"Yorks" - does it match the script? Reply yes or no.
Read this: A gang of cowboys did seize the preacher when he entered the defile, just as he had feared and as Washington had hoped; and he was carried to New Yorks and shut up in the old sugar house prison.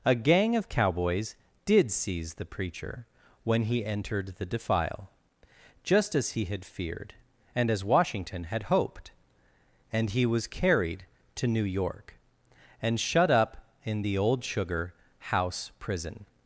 no